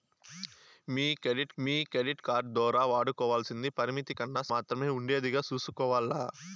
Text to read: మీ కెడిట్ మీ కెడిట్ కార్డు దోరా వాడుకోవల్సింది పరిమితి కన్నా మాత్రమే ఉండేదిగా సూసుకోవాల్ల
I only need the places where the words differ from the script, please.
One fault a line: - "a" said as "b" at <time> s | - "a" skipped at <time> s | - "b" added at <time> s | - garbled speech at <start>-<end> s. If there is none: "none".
none